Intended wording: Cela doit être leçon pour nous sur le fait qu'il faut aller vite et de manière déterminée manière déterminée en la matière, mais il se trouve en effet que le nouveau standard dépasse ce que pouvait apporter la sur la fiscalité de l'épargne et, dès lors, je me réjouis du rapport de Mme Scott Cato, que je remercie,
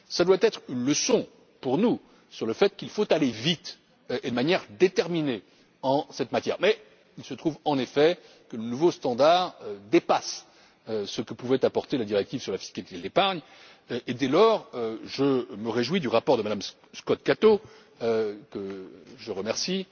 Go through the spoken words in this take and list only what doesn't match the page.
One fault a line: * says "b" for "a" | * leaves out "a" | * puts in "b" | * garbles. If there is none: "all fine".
* puts in "une"
* leaves out "manière déterminée"
* puts in "directive"